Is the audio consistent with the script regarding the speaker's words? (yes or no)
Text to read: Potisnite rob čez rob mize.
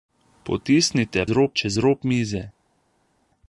yes